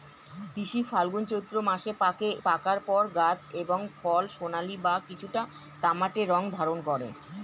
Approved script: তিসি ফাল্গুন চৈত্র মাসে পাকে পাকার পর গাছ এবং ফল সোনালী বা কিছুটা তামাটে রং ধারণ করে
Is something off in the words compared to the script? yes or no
no